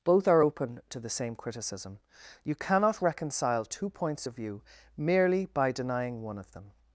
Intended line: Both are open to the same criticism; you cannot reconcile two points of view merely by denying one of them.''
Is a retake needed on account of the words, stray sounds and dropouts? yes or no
no